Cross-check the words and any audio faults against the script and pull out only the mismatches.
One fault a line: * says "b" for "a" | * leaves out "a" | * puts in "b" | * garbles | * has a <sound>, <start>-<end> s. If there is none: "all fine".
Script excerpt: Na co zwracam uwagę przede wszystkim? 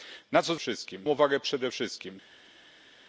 * says "wszystkim" for "zwracam"